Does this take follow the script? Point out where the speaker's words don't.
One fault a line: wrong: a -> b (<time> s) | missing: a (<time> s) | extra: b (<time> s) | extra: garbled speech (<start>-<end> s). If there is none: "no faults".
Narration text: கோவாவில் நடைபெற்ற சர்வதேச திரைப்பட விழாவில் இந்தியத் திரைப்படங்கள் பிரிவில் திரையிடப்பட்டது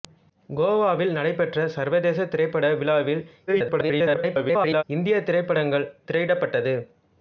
extra: garbled speech (3.5-4.8 s)
missing: பிரிவில் (5.9 s)